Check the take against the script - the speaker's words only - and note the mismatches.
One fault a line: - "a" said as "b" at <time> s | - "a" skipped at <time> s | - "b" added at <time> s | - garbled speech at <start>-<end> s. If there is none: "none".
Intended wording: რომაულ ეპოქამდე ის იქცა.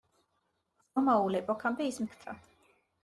none